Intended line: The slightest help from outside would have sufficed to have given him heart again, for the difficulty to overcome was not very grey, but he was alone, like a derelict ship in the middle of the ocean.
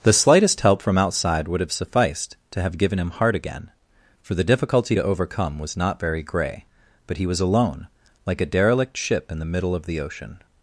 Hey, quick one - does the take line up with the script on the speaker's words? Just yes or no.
yes